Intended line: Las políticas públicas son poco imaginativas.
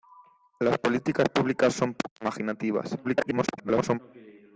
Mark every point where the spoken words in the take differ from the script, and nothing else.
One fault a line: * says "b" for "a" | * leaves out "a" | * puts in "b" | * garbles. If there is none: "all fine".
* garbles